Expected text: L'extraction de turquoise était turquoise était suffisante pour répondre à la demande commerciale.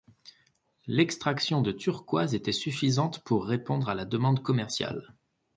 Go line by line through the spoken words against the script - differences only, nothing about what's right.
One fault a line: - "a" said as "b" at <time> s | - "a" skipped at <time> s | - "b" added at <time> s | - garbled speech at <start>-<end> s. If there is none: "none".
- "turquoise était" skipped at 2.5 s